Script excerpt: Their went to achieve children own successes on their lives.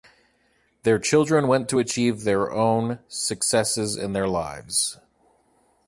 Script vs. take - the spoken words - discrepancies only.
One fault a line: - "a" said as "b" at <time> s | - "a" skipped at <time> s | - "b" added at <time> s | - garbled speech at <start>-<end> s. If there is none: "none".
- "children" added at 1.0 s
- "children" said as "their" at 2.2 s
- "on" said as "in" at 4.0 s